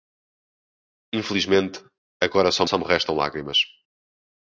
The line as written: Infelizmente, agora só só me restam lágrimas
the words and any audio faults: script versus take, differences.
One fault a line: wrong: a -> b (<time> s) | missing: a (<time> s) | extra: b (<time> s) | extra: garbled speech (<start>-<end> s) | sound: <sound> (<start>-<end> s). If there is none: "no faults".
no faults